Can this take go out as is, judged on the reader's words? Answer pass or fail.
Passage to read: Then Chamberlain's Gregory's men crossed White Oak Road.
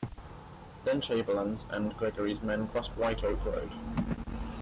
fail